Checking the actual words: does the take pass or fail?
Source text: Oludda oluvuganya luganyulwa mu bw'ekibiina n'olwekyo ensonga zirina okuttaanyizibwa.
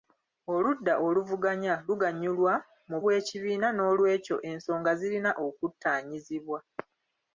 pass